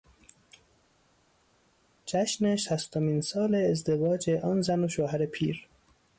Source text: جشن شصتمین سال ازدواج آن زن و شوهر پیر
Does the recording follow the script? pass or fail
pass